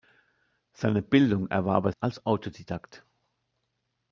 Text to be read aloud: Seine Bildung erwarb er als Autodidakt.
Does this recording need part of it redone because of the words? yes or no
no